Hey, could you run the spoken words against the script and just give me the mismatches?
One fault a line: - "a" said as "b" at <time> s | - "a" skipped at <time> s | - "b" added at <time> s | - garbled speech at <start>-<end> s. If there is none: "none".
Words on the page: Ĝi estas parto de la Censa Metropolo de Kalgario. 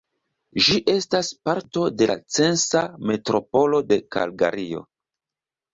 none